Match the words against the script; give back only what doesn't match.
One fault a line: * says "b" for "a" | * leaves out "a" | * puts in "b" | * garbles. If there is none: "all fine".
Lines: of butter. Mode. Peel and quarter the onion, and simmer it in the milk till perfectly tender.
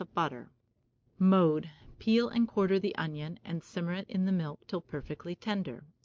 all fine